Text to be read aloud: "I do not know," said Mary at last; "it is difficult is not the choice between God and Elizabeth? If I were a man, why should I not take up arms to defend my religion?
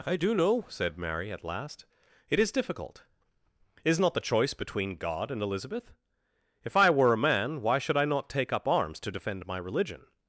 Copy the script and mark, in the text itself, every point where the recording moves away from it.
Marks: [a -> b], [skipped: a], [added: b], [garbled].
"I do [skipped: not] know," said Mary at last; "it is difficult is not the choice between God and Elizabeth? If I were a man, why should I not take up arms to defend my religion?